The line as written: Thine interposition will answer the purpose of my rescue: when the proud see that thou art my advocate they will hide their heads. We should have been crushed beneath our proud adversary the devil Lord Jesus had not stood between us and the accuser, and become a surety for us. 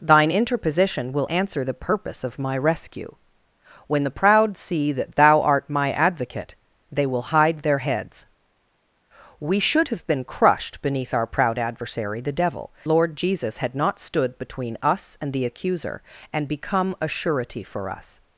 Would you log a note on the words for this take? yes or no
no